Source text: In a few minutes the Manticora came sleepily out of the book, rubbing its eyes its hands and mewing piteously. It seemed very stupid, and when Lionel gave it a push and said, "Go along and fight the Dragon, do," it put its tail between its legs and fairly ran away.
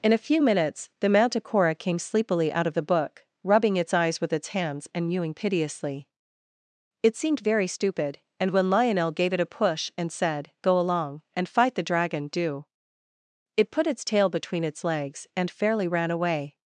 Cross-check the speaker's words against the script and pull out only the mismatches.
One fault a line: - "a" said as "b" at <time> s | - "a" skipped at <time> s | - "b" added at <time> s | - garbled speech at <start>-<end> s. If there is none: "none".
- "with" added at 4.2 s